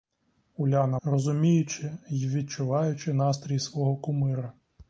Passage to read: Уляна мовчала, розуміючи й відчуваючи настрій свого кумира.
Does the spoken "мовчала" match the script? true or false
false